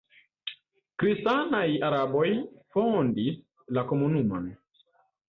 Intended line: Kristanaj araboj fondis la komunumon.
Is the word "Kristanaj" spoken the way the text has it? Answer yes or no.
yes